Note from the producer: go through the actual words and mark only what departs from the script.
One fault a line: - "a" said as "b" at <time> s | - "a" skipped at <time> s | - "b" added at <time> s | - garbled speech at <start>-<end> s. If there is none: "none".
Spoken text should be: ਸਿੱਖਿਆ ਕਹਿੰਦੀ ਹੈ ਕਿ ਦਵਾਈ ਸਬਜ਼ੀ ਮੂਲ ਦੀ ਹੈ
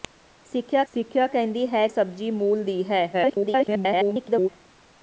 - "ਸਿੱਖਿਆ" added at 0.9 s
- "ਕਿ ਦਵਾਈ" skipped at 1.9 s
- garbled speech at 3.1-4.5 s